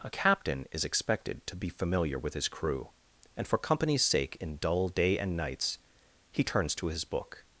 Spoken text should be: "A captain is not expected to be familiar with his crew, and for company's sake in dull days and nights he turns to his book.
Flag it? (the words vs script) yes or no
yes